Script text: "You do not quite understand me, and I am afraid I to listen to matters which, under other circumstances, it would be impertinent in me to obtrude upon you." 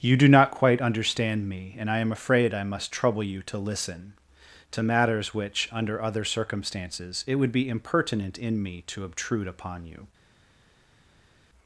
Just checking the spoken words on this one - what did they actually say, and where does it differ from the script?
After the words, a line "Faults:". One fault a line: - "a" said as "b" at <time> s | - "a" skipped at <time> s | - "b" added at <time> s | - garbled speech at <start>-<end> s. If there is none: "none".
"You do not quite understand me, and I am afraid I must trouble you to listen to matters which, under other circumstances, it would be impertinent in me to obtrude upon you."
Faults:
- "must trouble you" added at 2.6 s